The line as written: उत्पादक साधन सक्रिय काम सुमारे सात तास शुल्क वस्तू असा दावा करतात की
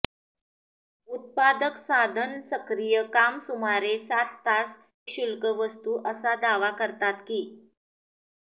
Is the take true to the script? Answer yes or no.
yes